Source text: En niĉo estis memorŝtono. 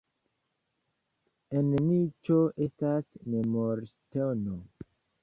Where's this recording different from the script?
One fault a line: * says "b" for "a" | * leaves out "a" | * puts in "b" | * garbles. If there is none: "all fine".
* says "estas" for "estis"